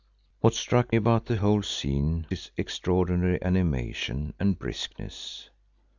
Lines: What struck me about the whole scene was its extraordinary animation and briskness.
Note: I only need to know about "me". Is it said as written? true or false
false